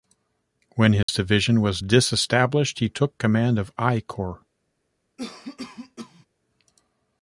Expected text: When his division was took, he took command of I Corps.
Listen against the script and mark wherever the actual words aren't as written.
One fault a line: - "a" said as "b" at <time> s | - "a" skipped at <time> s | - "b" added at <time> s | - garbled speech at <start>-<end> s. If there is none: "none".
- "took" said as "disestablished" at 1.8 s